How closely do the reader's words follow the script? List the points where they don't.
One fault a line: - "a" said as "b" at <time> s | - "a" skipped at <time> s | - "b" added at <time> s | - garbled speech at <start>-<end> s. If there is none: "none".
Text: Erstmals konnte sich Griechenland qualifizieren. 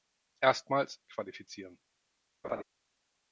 - "konnte sich Griechenland" skipped at 1.0 s